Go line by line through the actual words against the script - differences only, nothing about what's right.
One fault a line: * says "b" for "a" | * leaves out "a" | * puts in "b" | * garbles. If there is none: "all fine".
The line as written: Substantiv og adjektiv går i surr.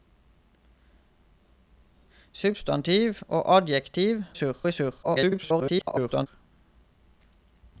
* says "surr" for "går"
* garbles